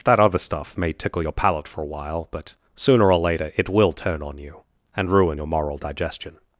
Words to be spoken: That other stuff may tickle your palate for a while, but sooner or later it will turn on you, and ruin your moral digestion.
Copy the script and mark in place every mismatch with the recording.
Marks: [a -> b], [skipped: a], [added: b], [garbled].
That other stuff may tickle your palate for a while, but sooner or later it will turn on you, and ruin your moral digestion.